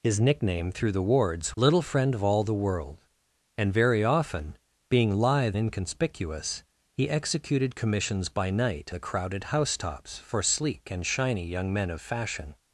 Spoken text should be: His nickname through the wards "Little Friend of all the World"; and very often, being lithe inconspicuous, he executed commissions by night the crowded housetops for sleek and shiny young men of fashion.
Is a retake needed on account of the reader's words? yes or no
no